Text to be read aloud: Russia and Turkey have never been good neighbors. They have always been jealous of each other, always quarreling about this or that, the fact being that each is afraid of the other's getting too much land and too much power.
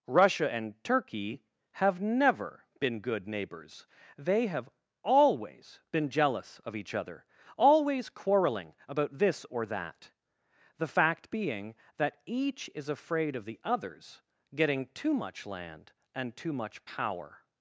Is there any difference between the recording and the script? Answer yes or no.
no